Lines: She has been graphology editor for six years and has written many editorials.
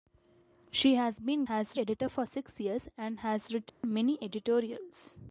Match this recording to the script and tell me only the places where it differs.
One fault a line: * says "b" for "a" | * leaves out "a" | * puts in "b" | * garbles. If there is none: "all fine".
* says "has" for "graphology"